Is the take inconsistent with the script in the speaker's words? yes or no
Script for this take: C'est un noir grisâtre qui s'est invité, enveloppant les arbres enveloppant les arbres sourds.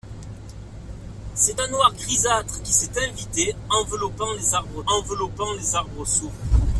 no